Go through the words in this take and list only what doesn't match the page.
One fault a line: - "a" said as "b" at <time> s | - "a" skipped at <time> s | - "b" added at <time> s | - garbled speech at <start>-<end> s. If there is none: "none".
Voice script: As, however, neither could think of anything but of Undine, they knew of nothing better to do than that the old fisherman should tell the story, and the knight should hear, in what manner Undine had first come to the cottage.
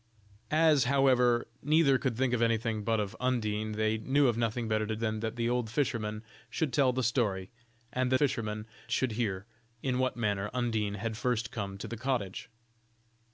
- "do" skipped at 5.0 s
- "knight" said as "fisherman" at 8.1 s